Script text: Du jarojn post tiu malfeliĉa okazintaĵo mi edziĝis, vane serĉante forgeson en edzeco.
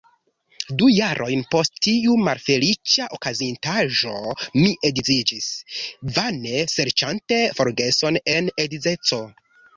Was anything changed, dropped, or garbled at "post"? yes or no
no